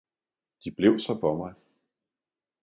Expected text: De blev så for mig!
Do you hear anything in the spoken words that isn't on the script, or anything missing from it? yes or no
no